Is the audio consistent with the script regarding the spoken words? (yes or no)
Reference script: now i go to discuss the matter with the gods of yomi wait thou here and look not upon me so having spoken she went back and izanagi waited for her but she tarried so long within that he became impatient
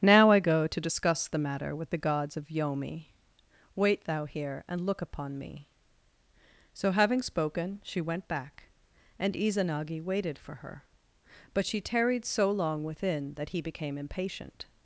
no